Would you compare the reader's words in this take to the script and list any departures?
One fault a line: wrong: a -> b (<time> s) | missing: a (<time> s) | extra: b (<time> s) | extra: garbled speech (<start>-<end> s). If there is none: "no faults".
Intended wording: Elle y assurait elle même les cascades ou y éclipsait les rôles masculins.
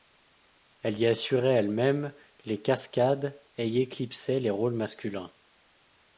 wrong: ou -> et (3.5 s)